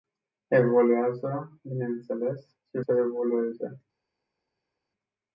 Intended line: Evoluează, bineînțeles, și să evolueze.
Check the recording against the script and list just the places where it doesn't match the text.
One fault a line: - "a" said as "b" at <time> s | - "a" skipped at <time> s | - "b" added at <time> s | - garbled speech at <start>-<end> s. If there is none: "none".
none